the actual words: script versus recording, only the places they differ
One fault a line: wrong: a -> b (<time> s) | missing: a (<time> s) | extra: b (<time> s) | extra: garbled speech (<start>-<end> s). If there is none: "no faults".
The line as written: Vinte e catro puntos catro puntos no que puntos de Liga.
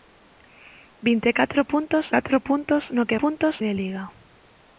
no faults